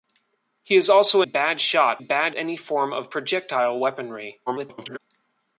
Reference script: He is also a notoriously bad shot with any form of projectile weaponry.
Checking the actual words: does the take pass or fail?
fail